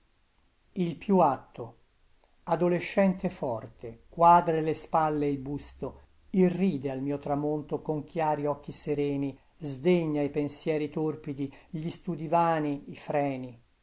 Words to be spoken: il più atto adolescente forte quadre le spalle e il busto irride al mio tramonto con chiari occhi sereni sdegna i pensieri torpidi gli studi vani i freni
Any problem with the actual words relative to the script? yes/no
no